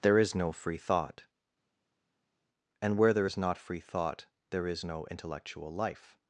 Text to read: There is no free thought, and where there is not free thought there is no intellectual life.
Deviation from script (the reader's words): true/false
false